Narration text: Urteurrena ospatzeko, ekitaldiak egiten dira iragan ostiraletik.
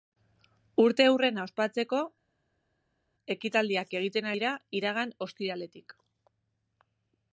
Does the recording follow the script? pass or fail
pass